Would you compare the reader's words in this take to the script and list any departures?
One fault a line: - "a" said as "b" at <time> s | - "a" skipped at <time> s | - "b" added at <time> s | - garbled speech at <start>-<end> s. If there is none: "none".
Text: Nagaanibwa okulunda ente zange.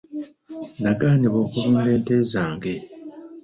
none